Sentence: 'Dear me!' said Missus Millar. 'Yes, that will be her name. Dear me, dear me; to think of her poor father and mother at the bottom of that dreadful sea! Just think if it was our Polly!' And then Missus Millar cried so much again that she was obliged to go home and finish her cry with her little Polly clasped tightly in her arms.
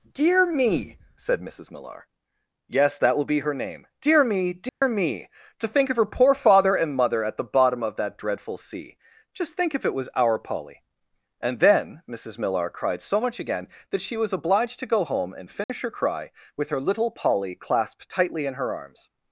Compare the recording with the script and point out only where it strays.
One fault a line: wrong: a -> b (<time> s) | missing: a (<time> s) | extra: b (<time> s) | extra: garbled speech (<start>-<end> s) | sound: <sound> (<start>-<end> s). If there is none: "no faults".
sound: dropout (4.7-4.8 s)
sound: dropout (15.6-15.7 s)